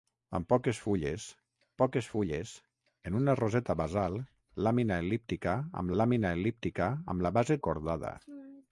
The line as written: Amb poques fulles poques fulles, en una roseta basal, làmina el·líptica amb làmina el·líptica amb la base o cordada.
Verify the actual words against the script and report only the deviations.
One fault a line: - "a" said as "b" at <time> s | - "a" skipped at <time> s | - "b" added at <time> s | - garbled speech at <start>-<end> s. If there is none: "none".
none